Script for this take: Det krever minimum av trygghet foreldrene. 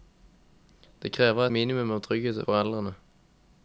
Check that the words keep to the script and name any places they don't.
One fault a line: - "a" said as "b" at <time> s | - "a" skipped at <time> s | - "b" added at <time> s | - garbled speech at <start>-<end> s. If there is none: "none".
none